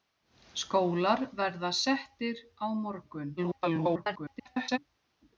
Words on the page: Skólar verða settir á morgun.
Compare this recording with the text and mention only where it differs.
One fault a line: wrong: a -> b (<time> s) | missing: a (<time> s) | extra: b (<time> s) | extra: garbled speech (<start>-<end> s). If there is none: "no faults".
extra: garbled speech (3.4-4.8 s)